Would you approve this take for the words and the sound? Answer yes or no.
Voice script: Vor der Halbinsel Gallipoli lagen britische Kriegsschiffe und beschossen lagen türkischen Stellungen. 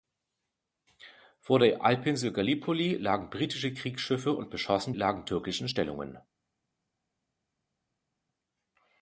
yes